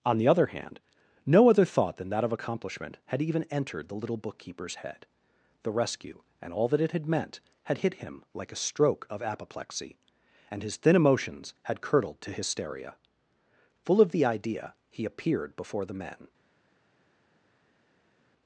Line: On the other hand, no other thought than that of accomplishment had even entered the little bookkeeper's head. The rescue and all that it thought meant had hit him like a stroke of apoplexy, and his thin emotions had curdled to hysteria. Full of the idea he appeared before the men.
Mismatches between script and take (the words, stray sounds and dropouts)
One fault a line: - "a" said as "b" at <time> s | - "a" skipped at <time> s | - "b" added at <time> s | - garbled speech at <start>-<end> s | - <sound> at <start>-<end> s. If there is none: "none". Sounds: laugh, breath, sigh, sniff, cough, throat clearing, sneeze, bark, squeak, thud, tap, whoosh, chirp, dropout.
- "thought" said as "had" at 6.9 s